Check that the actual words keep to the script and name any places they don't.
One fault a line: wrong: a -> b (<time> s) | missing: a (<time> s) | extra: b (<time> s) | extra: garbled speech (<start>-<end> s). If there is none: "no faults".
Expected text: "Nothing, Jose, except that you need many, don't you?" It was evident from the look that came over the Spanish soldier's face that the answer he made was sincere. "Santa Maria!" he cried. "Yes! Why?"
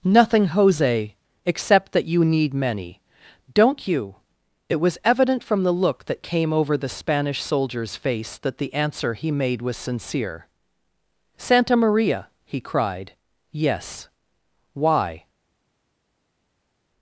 no faults